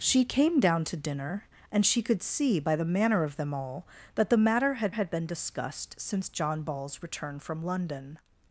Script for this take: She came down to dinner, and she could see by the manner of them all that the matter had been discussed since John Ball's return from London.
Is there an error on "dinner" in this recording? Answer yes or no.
no